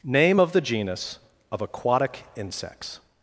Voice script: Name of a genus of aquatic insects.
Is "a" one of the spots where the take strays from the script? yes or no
yes